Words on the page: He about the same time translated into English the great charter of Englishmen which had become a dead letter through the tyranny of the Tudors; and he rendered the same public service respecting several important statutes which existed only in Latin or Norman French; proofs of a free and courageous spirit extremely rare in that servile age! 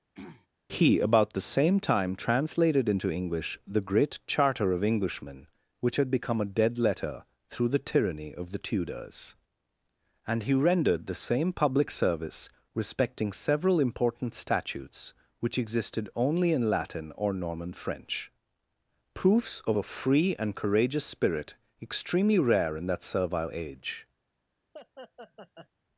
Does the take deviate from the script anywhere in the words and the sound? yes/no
yes